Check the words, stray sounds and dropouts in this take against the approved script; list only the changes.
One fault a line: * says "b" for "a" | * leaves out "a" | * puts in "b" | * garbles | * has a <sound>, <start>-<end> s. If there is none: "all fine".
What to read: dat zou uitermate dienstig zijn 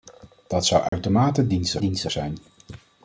* has a dropout, 0.9-0.9 s
* puts in "dienstig"